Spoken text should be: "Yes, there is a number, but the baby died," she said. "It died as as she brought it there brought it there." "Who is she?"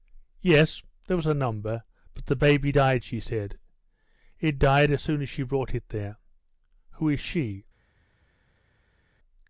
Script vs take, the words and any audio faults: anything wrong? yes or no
yes